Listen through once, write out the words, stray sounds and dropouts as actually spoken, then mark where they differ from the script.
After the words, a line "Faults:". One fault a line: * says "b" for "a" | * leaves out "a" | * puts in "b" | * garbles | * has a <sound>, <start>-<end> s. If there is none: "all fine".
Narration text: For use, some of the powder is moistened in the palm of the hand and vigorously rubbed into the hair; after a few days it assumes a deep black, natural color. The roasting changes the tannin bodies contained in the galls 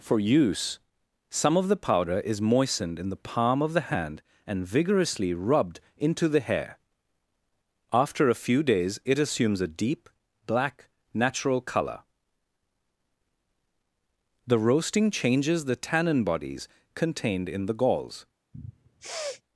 For use, some of the powder is moistened in the palm of the hand and vigorously rubbed into the hair; after a few days it assumes a deep black, natural color. The roasting changes the tannin bodies contained in the galls
Faults:
* has a sniff, 18.5-19.4 s